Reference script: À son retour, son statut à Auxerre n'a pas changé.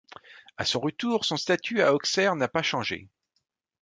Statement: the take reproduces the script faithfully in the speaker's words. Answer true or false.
true